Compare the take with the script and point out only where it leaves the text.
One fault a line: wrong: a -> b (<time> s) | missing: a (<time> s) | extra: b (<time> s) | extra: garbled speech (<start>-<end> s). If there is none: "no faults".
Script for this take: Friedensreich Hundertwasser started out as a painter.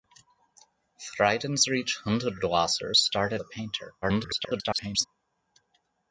missing: out as (3.4 s)
extra: garbled speech (4.0-5.1 s)